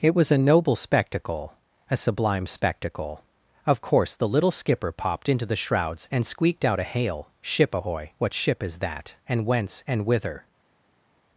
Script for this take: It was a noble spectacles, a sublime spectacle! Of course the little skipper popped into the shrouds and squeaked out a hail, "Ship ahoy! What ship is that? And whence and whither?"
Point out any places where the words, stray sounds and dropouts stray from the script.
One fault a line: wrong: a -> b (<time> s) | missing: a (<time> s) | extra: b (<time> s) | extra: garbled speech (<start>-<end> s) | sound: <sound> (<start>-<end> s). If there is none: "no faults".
wrong: spectacles -> spectacle (0.8 s)